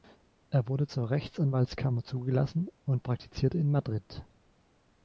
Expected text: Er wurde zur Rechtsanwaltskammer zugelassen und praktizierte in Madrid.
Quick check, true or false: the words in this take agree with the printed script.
true